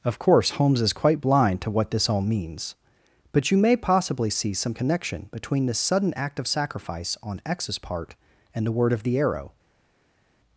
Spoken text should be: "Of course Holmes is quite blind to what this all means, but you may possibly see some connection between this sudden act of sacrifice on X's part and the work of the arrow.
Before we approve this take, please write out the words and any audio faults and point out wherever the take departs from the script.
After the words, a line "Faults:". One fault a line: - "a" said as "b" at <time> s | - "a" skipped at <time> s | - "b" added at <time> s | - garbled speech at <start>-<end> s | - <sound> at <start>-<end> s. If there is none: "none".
"Of course Holmes is quite blind to what this all means, but you may possibly see some connection between this sudden act of sacrifice on X's part and the word of the arrow.
Faults:
- "work" said as "word" at 8.8 s